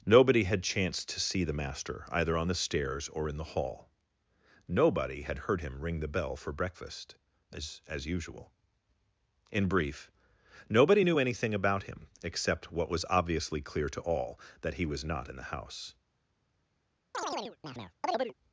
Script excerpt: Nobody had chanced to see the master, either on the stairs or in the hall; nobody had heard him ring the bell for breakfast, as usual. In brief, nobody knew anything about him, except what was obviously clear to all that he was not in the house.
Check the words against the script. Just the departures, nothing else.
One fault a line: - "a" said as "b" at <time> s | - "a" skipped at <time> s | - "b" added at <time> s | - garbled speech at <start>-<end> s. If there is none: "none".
- "as" added at 7.9 s